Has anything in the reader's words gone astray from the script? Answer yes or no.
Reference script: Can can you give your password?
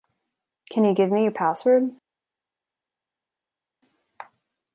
yes